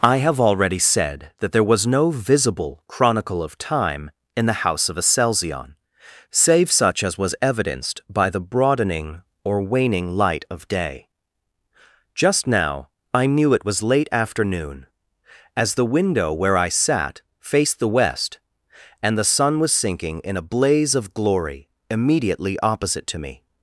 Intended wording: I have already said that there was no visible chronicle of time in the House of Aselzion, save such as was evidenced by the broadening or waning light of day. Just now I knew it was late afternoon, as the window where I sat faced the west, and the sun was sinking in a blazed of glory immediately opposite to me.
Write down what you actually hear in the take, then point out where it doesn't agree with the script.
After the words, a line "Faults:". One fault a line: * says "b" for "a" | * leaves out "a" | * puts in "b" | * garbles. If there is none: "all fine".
I have already said that there was no visible chronicle of time in the House of Aselzion, save such as was evidenced by the broadening or waning light of day. Just now I knew it was late afternoon, as the window where I sat faced the west, and the sun was sinking in a blaze of glory immediately opposite to me.
Faults:
* says "blaze" for "blazed"